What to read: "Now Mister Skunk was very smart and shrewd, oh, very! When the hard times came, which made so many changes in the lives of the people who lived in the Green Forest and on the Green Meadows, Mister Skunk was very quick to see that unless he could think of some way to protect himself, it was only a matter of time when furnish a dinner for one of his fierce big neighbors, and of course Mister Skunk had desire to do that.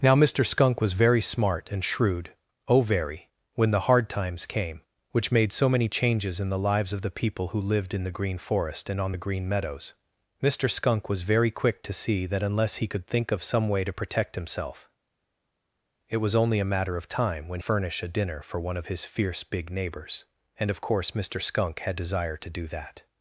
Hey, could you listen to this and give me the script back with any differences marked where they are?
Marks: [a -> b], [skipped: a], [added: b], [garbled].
"Now Mister Skunk was very smart and shrewd, oh, very! When the hard times came, which made so many changes in the lives of the people who lived in the Green Forest and on the Green Meadows, Mister Skunk was very quick to see that unless he could think of some way to protect himself, it was only a matter of time when furnish a dinner for one of his fierce big neighbors, and of course Mister Skunk had desire to do that.